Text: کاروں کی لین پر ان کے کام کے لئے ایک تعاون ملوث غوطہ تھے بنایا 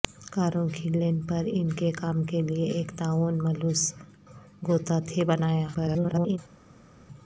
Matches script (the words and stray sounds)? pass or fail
fail